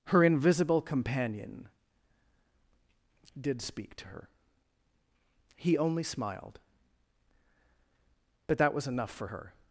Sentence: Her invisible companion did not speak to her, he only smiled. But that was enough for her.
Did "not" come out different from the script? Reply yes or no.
yes